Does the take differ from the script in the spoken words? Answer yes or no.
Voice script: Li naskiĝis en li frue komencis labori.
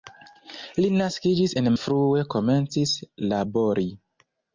no